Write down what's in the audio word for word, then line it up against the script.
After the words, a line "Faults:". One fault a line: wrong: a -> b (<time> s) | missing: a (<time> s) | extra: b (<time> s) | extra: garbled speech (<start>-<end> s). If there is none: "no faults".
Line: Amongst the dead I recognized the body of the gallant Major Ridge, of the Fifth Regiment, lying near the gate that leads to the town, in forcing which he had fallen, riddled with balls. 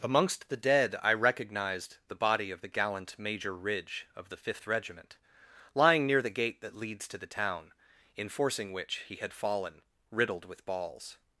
Amongst the dead I recognized the body of the gallant Major Ridge, of the Fifth Regiment, lying near the gate that leads to the town, in forcing which he had fallen, riddled with balls.
Faults:
no faults